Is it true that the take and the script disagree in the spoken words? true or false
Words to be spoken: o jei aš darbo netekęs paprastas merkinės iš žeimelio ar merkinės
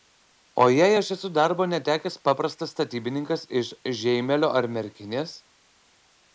true